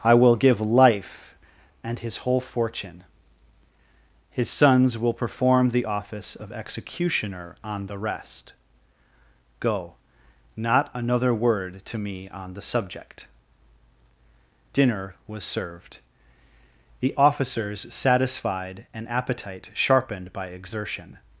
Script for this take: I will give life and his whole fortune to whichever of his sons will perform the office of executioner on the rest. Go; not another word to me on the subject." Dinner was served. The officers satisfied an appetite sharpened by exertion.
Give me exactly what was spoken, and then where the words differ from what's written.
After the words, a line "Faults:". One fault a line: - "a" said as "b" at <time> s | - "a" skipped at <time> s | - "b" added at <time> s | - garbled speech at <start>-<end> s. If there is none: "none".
I will give life and his whole fortune his sons will perform the office of executioner on the rest. Go; not another word to me on the subject." Dinner was served. The officers satisfied an appetite sharpened by exertion.
Faults:
- "to whichever of" skipped at 3.0 s